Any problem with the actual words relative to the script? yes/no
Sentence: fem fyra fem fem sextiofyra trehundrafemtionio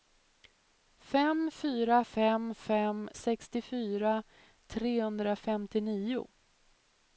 no